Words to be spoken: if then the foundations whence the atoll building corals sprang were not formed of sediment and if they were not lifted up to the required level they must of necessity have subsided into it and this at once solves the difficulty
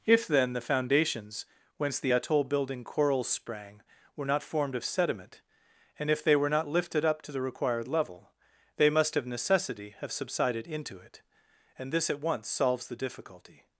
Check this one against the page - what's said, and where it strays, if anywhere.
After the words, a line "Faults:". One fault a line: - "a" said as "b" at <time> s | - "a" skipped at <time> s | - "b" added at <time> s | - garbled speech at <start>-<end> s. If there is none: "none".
if then the foundations whence the atoll building corals sprang were not formed of sediment and if they were not lifted up to the required level they must of necessity have subsided into it and this at once solves the difficulty
Faults:
none